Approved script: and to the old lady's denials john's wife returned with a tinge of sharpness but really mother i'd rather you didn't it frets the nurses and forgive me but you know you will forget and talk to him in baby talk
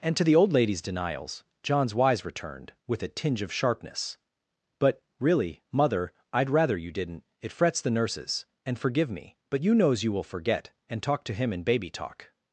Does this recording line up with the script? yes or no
no